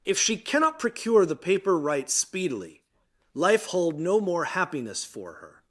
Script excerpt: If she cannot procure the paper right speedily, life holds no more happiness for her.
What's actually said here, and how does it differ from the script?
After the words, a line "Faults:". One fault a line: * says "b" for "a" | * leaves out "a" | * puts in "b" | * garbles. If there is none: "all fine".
If she cannot procure the paper right speedily, life hold no more happiness for her.
Faults:
* says "hold" for "holds"